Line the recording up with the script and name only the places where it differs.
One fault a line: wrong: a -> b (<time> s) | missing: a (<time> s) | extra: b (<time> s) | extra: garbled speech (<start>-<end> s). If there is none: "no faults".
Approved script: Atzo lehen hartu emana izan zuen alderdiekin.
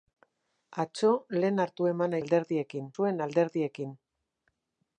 wrong: izan -> alderdiekin (2.2 s)